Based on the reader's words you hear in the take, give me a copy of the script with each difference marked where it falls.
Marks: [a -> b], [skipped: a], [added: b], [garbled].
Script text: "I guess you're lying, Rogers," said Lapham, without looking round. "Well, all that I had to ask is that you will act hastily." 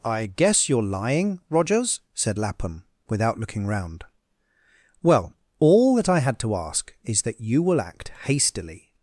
"I guess you're lying, Rogers," said Lapham, without looking round. "Well, all that I had to ask is that you will act hastily."